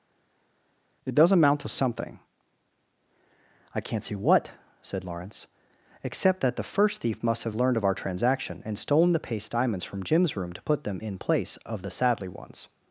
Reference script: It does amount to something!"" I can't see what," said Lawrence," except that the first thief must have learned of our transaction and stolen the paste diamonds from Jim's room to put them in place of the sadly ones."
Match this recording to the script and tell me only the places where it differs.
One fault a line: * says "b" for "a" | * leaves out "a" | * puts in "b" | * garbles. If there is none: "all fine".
all fine